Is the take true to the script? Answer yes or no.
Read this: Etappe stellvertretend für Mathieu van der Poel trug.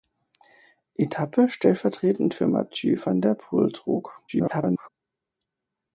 no